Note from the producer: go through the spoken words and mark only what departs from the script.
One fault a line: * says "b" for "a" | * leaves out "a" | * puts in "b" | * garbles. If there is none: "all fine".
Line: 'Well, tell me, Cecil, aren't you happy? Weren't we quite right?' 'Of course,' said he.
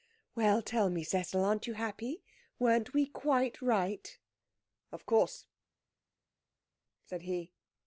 all fine